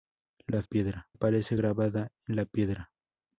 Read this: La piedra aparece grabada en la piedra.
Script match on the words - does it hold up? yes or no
yes